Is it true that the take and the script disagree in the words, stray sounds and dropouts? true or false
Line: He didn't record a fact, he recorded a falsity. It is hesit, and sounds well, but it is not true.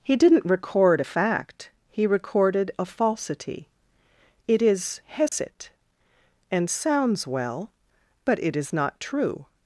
true